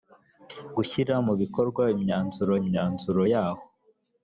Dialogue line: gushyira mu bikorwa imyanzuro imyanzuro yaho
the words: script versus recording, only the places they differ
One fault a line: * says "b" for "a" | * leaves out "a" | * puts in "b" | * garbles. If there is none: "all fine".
all fine